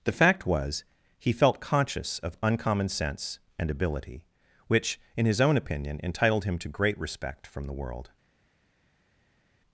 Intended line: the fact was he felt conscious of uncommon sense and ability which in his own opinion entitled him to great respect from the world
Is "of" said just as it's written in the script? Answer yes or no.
yes